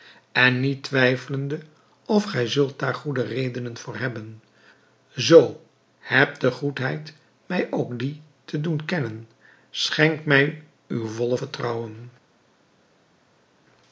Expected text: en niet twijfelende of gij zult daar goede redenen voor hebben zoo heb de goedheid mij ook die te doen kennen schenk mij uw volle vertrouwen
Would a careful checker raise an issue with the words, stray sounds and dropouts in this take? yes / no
no